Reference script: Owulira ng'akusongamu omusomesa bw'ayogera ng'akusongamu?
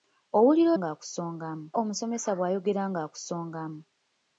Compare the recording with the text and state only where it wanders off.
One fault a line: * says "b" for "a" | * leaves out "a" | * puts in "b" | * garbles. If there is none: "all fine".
all fine